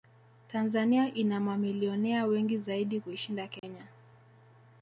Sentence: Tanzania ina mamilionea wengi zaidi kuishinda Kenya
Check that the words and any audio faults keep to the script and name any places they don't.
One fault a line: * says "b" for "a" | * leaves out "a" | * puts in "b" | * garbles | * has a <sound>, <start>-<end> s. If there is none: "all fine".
* has a dropout, 3.6-3.6 s